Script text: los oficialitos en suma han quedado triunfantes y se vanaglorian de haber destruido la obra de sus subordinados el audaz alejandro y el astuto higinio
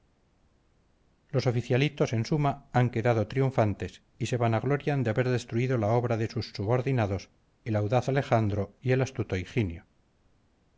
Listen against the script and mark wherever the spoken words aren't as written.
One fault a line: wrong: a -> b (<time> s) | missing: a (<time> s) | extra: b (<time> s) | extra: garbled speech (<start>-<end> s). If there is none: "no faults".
no faults